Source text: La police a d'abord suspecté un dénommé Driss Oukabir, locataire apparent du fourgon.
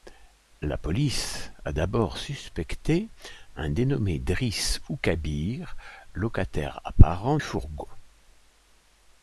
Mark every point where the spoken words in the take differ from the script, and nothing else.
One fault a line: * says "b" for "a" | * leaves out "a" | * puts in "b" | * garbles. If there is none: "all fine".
* leaves out "du"